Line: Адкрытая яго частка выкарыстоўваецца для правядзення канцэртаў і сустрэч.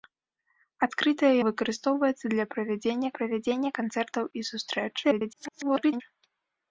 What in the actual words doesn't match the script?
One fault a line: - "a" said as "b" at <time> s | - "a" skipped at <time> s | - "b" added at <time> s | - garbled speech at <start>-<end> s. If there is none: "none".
- "яго частка" skipped at 1.3 s
- "правядзення" added at 3.2 s
- garbled speech at 5.0-6.0 s